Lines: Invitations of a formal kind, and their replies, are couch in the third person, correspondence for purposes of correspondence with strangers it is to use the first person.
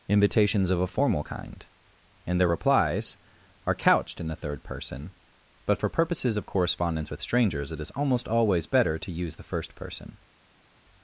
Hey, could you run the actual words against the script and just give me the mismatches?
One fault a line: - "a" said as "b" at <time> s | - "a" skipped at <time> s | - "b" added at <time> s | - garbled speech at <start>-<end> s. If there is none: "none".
- "couch" said as "couched" at 3.7 s
- "correspondence" said as "but" at 5.6 s
- "almost always better" added at 7.9 s